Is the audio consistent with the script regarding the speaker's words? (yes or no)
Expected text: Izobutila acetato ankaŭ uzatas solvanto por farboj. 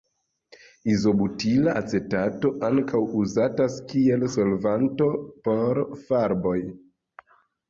no